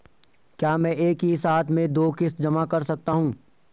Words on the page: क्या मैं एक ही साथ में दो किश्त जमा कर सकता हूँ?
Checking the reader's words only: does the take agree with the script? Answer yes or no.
yes